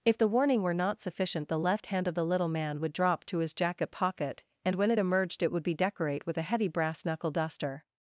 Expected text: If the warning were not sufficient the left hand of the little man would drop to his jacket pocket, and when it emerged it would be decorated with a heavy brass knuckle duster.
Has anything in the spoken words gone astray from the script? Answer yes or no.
yes